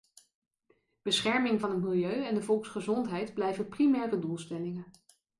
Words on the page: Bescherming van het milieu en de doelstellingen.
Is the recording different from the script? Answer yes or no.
yes